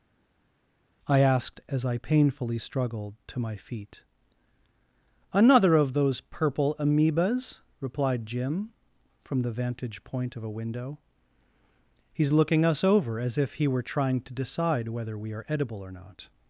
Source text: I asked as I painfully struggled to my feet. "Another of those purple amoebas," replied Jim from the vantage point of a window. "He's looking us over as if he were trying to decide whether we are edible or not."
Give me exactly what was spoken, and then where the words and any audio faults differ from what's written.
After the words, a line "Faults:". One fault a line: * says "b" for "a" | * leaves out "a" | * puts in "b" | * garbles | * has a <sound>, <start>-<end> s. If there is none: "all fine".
I asked as I painfully struggled to my feet. "Another of those purple amoebas," replied Jim from the vantage point of a window. "He's looking us over as if he were trying to decide whether we are edible or not."
Faults:
all fine